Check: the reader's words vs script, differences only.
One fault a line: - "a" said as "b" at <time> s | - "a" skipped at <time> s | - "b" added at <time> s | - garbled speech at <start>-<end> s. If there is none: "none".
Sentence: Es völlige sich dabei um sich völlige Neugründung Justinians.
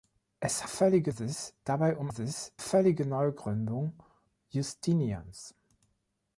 none